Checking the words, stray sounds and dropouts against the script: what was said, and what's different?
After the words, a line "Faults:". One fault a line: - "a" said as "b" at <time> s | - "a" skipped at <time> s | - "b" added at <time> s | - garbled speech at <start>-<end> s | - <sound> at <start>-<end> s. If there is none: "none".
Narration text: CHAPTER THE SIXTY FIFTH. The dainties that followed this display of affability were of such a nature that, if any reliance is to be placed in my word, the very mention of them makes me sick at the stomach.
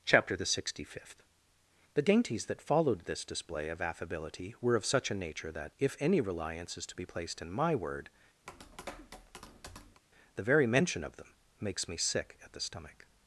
CHAPTER THE SIXTY FIFTH. The dainties that followed this display of affability were of such a nature that, if any reliance is to be placed in my word, the very mention of them makes me sick at the stomach.
Faults:
- tap at 8.5-10.0 s